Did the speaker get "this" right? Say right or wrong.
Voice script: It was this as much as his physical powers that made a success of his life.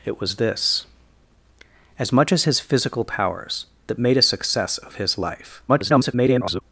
right